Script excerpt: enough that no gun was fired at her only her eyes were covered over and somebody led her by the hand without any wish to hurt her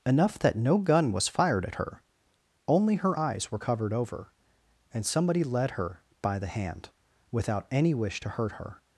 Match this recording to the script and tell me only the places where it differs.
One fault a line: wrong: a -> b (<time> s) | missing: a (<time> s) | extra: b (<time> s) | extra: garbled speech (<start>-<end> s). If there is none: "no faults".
no faults